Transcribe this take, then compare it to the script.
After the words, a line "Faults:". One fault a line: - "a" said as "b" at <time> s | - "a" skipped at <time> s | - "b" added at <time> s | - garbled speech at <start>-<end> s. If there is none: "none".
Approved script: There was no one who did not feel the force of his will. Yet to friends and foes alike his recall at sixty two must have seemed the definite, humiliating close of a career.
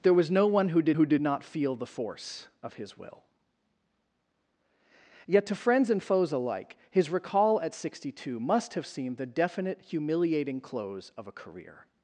There was no one who did who did not feel the force of his will. Yet to friends and foes alike his recall at sixty two must have seemed the definite, humiliating close of a career.
Faults:
- "who did" added at 0.9 s